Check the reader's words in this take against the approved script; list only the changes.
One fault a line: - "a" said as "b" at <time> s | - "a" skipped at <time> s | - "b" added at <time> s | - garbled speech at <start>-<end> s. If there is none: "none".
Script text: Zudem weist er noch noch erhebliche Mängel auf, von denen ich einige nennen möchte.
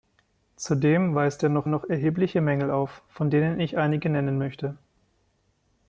none